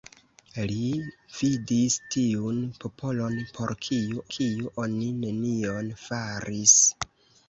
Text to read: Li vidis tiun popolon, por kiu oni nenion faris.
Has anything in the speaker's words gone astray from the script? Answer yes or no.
yes